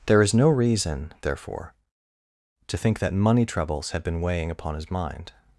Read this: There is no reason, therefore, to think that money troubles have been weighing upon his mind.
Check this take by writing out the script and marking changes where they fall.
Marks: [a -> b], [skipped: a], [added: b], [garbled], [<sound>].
There is no reason, therefore, to think that money troubles [have -> had] been weighing upon his mind.